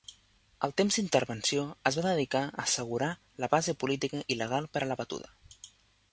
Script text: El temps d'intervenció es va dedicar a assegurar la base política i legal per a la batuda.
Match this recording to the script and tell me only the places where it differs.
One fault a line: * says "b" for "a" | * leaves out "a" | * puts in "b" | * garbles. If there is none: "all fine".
all fine